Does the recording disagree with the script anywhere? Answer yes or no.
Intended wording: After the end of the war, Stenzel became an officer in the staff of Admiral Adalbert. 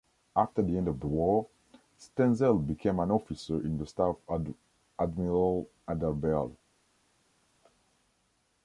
no